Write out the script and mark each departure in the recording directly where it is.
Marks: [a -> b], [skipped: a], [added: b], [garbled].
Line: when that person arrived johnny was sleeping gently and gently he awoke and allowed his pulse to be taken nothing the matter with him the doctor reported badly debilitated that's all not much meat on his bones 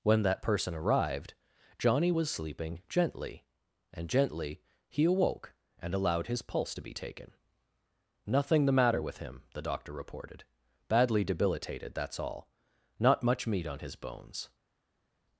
when that person arrived johnny was sleeping gently and gently he awoke and allowed his pulse to be taken nothing the matter with him the doctor reported badly debilitated that's all not much meat on his bones